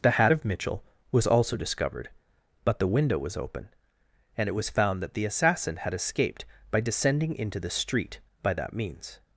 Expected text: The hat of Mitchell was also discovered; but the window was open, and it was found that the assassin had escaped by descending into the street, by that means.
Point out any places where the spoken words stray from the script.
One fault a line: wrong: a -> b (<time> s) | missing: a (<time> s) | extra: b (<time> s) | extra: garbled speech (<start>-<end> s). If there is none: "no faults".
no faults